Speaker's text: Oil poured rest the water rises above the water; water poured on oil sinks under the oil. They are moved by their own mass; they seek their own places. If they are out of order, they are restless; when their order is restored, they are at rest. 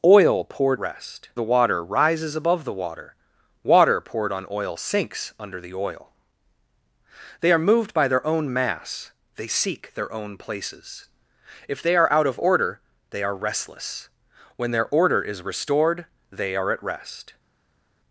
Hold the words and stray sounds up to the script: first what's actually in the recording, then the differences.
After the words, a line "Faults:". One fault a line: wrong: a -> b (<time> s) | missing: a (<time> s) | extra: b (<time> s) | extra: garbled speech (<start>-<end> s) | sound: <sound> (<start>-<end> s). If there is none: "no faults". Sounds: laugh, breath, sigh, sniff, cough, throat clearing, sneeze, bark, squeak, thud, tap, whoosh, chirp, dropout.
Oil poured rest the water rises above the water; water poured on oil sinks under the oil. They are moved by their own mass; they seek their own places. If they are out of order, they are restless; when their order is restored, they are at rest.
Faults:
no faults